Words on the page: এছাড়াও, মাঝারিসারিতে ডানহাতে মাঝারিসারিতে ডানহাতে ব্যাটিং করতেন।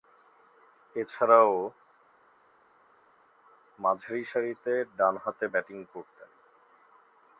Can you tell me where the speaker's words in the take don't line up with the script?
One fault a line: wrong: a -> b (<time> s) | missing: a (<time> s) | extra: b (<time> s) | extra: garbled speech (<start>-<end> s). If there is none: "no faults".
missing: মাঝারিসারিতে ডানহাতে (5.5 s)